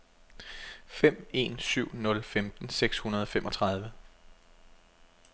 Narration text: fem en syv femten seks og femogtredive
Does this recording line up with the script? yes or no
no